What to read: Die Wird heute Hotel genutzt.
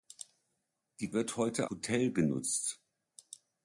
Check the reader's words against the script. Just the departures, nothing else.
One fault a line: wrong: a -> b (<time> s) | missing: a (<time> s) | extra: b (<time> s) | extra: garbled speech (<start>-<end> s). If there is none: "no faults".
no faults